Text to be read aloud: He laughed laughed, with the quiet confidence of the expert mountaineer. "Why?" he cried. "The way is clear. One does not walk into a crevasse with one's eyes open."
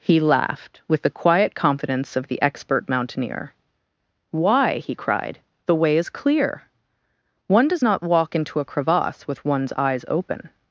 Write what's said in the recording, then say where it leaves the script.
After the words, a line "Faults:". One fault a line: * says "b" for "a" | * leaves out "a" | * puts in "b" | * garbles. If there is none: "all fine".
He laughed, with the quiet confidence of the expert mountaineer. "Why?" he cried. "The way is clear. One does not walk into a crevasse with one's eyes open."
Faults:
* leaves out "laughed"